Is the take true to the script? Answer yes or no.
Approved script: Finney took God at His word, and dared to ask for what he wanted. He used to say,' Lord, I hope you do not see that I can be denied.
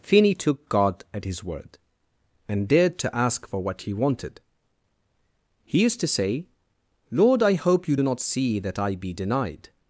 no